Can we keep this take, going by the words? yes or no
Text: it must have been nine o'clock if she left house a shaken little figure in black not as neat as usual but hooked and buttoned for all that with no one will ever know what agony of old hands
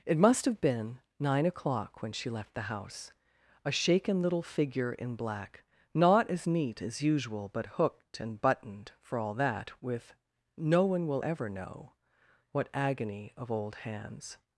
no